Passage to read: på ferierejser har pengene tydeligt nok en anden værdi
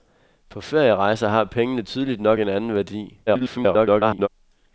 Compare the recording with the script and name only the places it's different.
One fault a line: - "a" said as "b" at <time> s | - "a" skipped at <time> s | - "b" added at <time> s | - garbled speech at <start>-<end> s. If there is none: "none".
- garbled speech at 3.3-4.3 s